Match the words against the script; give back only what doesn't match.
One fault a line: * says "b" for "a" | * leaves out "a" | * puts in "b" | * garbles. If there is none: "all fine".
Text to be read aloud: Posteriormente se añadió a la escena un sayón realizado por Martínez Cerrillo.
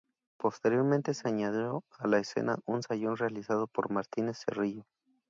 all fine